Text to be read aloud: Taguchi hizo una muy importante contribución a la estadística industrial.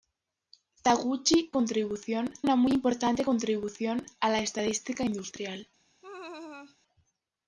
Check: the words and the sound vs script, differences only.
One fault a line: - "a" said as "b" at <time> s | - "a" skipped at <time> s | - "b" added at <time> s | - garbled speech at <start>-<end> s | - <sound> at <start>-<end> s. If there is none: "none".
- "hizo" said as "contribución" at 1.5 s
- laugh at 6.0-6.8 s